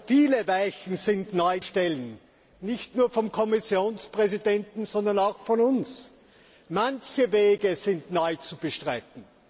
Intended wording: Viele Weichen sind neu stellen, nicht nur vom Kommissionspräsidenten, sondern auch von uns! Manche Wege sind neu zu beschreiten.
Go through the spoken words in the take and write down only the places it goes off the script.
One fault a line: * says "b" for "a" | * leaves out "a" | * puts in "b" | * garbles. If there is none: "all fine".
all fine